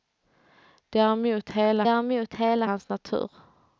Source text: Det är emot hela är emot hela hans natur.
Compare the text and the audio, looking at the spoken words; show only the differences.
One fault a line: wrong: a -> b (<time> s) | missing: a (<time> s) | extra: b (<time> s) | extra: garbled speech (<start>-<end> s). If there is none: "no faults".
no faults